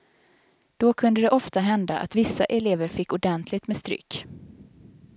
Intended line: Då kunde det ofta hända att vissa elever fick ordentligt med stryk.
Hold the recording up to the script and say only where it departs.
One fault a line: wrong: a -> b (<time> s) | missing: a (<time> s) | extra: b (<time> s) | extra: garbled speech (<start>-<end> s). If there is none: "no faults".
no faults